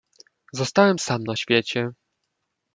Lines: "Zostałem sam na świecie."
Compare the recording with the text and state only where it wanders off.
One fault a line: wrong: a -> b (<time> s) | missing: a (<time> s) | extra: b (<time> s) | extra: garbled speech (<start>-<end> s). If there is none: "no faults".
no faults